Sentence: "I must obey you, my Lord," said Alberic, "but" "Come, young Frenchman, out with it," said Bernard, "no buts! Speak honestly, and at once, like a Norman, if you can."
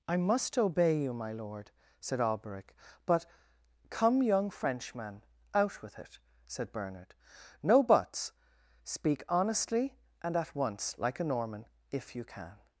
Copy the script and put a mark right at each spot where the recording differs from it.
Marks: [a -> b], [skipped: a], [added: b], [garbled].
"I must obey you, my Lord," said Alberic, "but" "Come, young Frenchman, out with it," said Bernard, "no buts! Speak honestly, and at once, like a Norman, if you can."